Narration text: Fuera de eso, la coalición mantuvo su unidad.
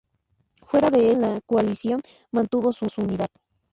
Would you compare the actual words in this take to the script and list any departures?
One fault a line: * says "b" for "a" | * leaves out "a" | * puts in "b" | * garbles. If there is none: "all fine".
* leaves out "eso"
* puts in "su"